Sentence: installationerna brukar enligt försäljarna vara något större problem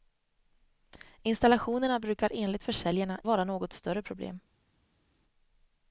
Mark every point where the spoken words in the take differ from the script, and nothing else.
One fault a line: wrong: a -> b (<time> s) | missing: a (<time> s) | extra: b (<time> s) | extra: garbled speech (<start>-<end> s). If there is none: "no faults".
no faults